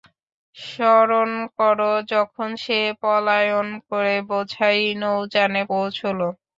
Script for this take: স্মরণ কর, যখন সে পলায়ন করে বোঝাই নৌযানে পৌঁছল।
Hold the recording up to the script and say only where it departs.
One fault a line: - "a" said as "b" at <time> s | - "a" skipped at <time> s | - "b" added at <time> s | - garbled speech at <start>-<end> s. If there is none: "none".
none